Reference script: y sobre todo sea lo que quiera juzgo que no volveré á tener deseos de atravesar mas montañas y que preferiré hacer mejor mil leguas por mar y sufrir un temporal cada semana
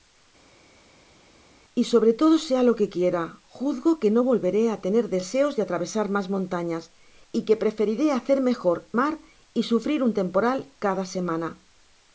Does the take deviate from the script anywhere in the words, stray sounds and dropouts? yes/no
yes